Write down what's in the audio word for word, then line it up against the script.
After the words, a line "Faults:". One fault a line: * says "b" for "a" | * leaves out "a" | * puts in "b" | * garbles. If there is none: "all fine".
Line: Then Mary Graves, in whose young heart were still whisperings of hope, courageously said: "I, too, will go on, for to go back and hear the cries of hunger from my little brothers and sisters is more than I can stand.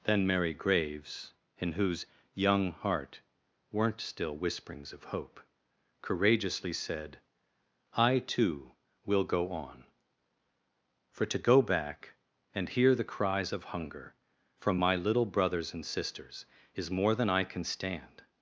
Then Mary Graves, in whose young heart weren't still whisperings of hope, courageously said: "I, too, will go on, for to go back and hear the cries of hunger from my little brothers and sisters is more than I can stand.
Faults:
* says "weren't" for "were"